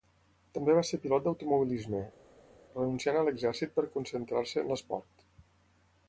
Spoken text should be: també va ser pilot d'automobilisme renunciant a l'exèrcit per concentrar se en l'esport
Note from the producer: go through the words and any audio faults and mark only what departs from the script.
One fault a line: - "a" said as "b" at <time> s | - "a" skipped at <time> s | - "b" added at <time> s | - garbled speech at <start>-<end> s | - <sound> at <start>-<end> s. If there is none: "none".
none